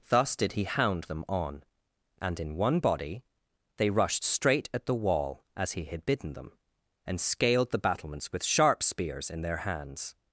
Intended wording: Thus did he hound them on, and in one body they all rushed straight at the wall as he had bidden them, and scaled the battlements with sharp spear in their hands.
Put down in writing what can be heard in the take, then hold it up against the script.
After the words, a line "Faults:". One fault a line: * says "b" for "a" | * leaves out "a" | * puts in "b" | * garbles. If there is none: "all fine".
Thus did he hound them on, and in one body they rushed straight at the wall as he had bidden them, and scaled the battlements with sharp spears in their hands.
Faults:
* leaves out "all"
* says "spears" for "spear"